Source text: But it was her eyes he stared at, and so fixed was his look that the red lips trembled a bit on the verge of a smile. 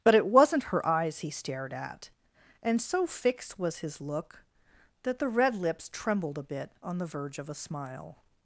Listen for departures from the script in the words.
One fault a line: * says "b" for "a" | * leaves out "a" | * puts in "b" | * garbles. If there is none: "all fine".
* says "wasn't" for "was"